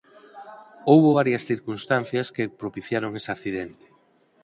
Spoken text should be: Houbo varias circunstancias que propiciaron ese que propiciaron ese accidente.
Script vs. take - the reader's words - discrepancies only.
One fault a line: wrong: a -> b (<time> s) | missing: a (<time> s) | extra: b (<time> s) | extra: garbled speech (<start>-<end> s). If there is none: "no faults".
missing: que propiciaron ese (3.3 s)